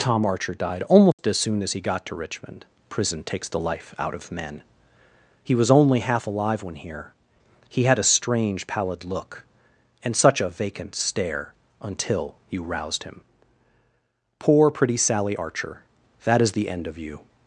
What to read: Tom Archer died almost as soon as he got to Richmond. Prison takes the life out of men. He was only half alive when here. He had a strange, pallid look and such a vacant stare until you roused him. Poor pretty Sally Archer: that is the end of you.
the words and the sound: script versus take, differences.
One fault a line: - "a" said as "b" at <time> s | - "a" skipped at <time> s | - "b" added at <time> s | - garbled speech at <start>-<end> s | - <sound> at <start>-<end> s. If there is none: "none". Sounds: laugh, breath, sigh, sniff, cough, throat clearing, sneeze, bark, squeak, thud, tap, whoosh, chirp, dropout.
- dropout at 1.1-1.2 s